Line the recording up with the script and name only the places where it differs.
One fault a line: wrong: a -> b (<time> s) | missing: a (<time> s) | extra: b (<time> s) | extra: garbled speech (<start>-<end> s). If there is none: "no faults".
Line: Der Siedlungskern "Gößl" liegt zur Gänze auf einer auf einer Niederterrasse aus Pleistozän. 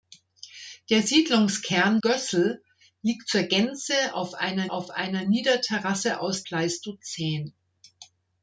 no faults